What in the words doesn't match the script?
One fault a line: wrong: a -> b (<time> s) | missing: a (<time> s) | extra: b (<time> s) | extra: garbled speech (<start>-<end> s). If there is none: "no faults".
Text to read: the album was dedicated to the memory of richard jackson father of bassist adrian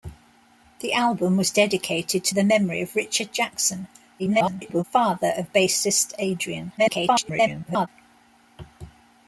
extra: garbled speech (4.2-4.8 s)
extra: garbled speech (6.8-7.9 s)